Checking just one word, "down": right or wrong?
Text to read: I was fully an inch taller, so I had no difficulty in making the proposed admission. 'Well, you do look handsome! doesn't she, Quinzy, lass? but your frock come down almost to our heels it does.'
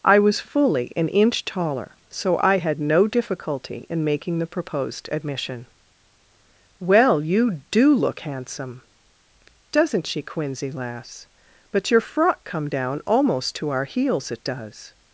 right